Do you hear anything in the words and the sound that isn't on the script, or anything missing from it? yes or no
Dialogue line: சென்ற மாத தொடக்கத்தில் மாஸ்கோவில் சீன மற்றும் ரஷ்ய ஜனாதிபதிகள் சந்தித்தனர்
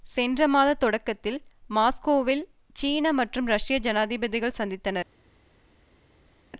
no